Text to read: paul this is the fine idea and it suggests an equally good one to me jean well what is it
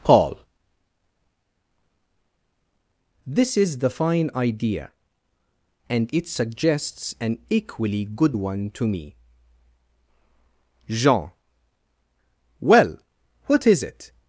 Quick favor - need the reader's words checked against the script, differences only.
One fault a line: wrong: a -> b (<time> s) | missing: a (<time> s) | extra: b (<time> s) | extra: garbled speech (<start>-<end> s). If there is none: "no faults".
no faults